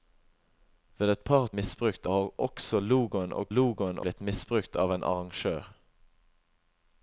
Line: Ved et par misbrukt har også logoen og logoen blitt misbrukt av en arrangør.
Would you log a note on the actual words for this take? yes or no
no